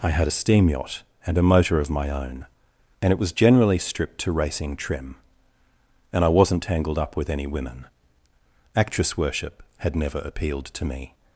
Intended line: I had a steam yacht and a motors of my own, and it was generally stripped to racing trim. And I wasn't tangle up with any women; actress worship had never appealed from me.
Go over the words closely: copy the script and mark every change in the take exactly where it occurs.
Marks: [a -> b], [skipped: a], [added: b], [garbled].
I had a steam yacht and a [motors -> motor] of my own, and it was generally stripped to racing trim. And I wasn't [tangle -> tangled] up with any women; actress worship had never appealed [from -> to] me.